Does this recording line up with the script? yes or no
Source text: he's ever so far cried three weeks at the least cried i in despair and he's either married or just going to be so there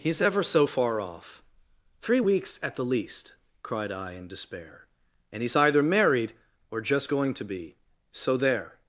no